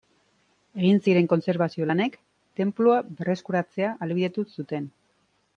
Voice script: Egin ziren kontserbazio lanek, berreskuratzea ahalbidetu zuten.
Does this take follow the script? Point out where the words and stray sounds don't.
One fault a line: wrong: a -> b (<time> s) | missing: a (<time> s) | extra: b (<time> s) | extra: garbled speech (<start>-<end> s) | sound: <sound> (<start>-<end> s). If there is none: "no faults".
extra: tenplua (2.6 s)